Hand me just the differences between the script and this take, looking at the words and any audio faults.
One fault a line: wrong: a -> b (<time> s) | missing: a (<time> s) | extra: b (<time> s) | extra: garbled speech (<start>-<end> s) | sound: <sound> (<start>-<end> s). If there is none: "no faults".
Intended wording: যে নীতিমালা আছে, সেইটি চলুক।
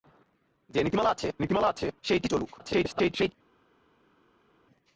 extra: নীতিমালা আছে (1.4 s)
extra: garbled speech (2.6-3.3 s)